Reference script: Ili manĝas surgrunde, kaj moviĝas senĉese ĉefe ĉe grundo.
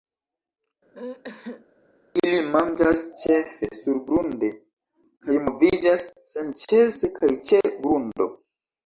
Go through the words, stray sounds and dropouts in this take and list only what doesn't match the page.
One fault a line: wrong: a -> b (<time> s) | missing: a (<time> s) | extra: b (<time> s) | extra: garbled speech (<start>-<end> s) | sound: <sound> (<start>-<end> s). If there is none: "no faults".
sound: sneeze (0.9-1.7 s)
extra: ĉefe (3.2 s)
wrong: ĉefe -> kaj (7.2 s)